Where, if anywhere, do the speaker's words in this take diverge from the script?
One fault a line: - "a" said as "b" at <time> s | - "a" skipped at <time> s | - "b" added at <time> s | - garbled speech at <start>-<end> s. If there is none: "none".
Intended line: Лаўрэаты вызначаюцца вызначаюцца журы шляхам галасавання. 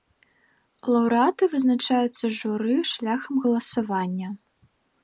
- "вызначаюцца" skipped at 2.2 s